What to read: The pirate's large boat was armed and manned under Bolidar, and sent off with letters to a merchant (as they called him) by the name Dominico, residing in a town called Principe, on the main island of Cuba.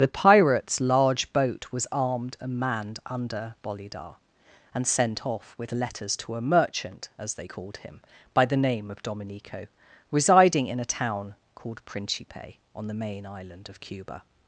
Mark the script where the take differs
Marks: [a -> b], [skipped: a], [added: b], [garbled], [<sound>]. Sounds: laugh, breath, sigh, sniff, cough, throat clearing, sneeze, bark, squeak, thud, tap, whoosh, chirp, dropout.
The pirate's large boat was armed and manned under Bolidar, and sent off with letters to a merchant (as they called him) by the name [added: of] Dominico, residing in a town called Principe, on the main island of Cuba.